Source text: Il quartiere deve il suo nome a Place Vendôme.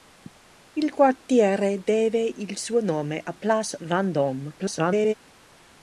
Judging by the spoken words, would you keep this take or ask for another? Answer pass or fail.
fail